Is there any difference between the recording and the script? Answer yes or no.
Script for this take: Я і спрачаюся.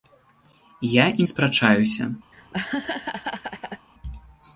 no